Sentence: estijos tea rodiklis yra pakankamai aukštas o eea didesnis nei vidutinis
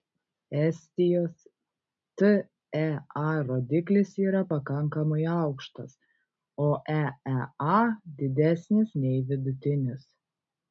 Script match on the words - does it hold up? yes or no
yes